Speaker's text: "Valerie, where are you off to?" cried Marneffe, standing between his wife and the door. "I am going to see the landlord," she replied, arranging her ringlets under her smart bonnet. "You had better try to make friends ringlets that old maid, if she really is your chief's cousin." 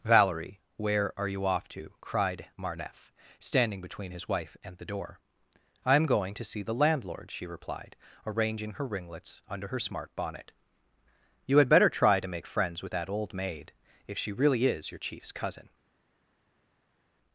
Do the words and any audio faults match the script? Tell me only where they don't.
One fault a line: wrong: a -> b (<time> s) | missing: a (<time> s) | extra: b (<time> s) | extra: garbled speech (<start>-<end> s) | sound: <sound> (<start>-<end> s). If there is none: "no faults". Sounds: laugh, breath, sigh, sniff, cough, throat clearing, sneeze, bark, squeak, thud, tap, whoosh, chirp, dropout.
wrong: ringlets -> with (12.8 s)